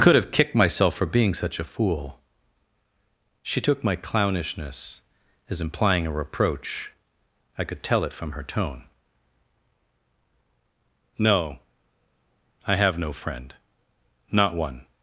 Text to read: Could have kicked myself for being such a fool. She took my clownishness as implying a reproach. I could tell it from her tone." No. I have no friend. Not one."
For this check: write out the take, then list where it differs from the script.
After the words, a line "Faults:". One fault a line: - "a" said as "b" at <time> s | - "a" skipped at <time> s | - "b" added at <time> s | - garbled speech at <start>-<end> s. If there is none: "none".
Could have kicked myself for being such a fool. She took my clownishness as implying a reproach. I could tell it from her tone." No. I have no friend. Not one."
Faults:
none